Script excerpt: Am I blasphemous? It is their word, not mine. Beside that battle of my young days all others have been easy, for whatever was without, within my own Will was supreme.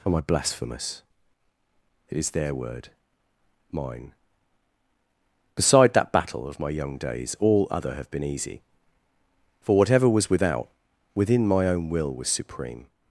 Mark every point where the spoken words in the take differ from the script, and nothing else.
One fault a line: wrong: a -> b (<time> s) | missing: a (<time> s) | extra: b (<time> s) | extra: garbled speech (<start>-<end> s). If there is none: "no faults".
missing: not (2.9 s)
wrong: others -> other (7.7 s)